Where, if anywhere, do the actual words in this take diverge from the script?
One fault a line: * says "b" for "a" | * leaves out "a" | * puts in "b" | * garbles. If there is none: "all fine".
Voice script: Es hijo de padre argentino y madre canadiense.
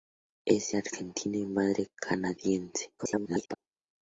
* leaves out "hijo de padre"
* garbles